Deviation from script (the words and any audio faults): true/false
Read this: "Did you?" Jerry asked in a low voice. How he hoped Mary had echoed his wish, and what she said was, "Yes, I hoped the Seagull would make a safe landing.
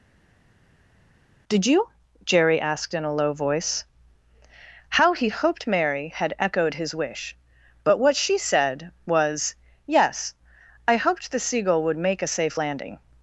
true